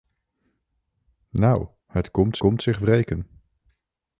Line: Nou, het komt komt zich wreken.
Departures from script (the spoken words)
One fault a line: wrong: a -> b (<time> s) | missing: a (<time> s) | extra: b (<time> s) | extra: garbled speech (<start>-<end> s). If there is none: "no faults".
no faults